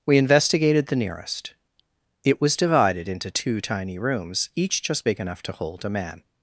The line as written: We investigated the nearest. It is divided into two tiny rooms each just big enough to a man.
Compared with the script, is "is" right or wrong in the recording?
wrong